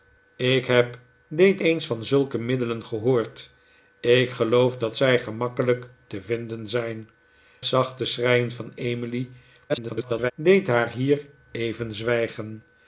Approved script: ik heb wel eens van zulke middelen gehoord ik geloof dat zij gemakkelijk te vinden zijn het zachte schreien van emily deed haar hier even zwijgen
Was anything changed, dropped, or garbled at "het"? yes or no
yes